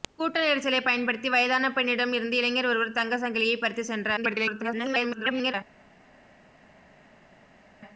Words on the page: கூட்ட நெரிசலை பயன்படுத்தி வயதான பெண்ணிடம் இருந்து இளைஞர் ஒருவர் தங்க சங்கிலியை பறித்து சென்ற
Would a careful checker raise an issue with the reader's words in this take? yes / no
yes